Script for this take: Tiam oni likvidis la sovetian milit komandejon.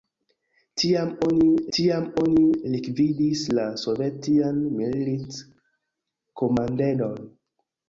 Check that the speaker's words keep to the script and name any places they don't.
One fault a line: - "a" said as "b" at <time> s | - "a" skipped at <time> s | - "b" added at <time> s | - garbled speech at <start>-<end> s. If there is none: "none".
- "tiam oni" added at 1.8 s